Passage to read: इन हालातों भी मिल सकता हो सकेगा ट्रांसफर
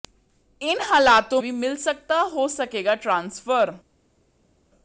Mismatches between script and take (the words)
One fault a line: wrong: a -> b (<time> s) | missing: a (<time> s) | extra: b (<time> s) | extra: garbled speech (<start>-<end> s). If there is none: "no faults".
no faults